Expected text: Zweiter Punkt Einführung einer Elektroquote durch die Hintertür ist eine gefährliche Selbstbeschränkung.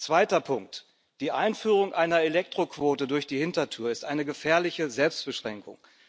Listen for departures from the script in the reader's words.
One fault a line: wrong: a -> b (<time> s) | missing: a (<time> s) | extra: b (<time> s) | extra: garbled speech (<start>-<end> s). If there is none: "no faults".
extra: Die (1.2 s)